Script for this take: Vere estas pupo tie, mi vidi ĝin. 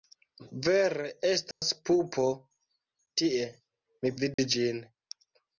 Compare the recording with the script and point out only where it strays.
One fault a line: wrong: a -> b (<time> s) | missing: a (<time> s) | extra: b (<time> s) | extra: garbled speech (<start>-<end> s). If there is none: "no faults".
no faults